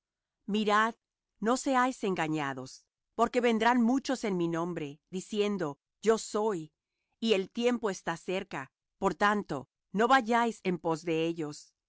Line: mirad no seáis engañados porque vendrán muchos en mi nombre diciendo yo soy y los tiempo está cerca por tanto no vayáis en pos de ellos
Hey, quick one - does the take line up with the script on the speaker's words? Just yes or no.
no